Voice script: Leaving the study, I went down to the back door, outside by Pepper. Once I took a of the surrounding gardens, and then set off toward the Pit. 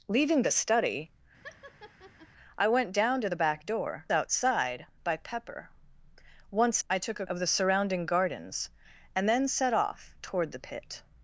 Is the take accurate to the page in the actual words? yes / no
yes